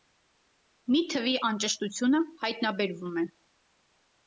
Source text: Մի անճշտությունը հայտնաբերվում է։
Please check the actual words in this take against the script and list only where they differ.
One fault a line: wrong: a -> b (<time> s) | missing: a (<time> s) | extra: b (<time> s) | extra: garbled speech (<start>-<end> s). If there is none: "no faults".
extra: թվի (1.1 s)